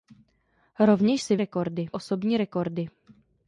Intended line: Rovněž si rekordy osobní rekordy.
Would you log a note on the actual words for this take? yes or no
no